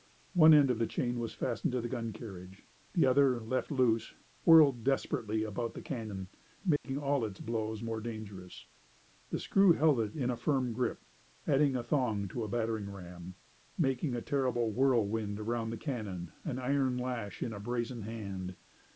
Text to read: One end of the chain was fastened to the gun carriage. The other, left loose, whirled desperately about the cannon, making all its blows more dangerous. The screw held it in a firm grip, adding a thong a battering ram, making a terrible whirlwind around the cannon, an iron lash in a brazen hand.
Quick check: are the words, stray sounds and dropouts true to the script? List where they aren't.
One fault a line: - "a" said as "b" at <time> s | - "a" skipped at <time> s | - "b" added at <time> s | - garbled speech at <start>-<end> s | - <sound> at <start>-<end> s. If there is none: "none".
- dropout at 6.8-6.8 s
- "to" added at 12.3 s